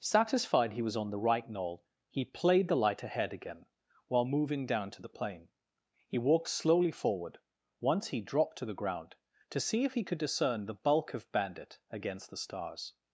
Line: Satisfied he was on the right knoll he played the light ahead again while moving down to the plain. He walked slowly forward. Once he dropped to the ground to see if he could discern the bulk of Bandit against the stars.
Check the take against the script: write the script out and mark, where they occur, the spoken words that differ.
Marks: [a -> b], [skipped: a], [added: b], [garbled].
Satisfied he was on the right knoll he played the light ahead again while moving down to the plain. He walked slowly forward. Once he dropped to the ground to see if he could discern the bulk of Bandit against the stars.